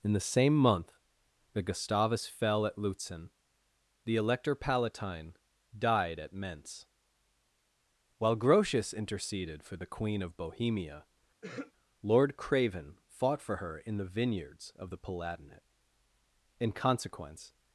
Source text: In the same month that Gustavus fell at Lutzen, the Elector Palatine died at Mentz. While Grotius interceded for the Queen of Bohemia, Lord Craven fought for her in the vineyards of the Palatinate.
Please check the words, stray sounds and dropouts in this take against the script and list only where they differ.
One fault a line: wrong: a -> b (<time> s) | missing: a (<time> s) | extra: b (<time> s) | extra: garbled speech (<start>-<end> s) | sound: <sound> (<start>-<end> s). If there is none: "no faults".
sound: throat clearing (11.4-11.7 s)
extra: In consequence (16.6 s)